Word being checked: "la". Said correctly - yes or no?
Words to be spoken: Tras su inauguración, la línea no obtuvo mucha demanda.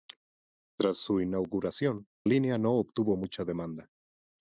no